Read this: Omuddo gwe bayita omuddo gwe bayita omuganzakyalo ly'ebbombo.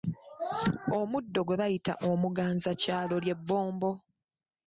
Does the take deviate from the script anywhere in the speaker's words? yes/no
yes